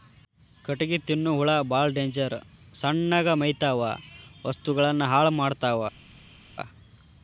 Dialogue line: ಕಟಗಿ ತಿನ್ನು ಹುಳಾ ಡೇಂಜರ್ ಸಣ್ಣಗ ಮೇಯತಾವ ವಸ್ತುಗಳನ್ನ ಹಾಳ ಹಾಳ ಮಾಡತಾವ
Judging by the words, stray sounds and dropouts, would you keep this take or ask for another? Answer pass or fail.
fail